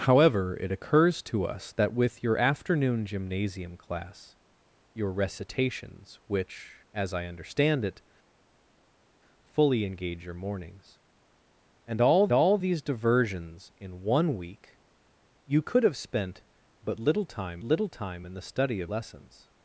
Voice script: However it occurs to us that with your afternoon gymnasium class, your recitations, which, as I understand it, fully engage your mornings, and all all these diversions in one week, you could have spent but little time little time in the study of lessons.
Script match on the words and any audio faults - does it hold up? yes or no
yes